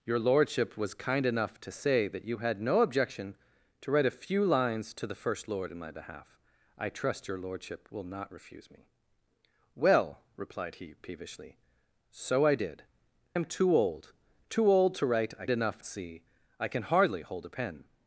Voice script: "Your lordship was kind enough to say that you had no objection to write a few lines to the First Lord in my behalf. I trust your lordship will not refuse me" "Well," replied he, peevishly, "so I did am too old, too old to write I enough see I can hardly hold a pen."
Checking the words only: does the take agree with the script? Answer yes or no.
yes